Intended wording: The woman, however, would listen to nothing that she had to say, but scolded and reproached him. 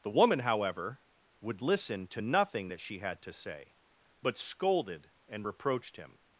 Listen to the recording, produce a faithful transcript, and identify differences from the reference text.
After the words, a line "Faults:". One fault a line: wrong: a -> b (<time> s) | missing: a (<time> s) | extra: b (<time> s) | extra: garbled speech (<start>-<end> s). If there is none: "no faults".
The woman, however, would listen to nothing that she had to say, but scolded and reproached him.
Faults:
no faults